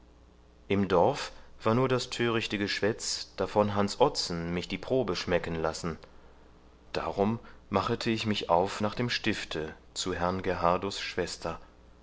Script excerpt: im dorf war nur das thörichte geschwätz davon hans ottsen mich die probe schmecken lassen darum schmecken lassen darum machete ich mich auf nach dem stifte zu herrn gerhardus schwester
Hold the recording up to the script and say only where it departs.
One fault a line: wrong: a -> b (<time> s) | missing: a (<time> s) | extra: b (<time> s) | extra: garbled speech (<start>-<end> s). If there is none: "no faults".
missing: schmecken lassen darum (7.4 s)